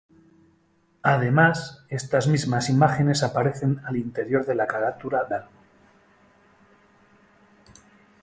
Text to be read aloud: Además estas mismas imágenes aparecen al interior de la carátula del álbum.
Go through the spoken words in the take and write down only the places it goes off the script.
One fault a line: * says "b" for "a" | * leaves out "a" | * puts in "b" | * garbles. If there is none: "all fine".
* leaves out "del"